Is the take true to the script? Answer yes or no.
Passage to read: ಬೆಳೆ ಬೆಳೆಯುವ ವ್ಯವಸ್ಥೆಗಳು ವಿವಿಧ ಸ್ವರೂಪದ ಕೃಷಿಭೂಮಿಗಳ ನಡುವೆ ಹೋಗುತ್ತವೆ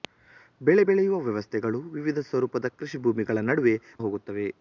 yes